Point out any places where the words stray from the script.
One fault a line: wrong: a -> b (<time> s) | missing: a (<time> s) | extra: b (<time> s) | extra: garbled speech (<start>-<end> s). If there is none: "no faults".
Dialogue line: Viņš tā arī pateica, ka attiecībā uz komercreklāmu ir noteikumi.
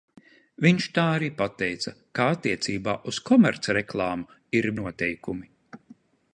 no faults